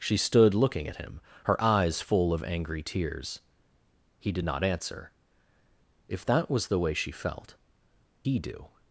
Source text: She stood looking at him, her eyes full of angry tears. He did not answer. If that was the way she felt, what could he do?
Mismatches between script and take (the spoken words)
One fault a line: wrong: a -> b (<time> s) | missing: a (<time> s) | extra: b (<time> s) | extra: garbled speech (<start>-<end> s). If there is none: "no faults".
missing: what could (7.6 s)